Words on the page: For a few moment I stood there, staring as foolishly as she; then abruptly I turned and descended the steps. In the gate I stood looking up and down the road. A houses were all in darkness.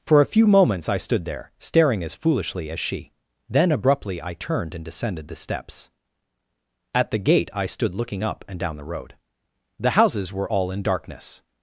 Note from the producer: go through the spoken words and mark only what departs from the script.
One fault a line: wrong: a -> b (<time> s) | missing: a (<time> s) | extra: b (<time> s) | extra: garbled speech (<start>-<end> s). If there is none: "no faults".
wrong: moment -> moments (0.5 s)
wrong: In -> At (6.9 s)
wrong: A -> The (9.8 s)